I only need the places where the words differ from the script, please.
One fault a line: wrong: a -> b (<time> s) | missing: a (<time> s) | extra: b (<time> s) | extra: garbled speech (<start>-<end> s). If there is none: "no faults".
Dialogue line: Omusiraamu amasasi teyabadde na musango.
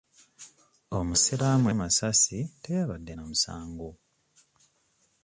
no faults